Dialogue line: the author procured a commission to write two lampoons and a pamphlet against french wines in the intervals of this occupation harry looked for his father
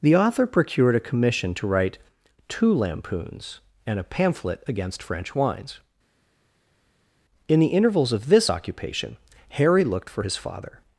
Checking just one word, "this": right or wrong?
right